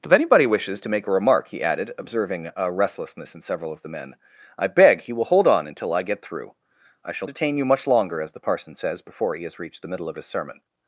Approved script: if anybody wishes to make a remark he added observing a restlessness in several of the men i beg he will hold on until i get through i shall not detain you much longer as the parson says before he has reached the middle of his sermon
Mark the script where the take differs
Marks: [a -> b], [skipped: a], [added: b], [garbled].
if anybody wishes to make a remark he added observing a restlessness in several of the men i beg he will hold on until i get through i shall [skipped: not] detain you much longer as the parson says before he has reached the middle of his sermon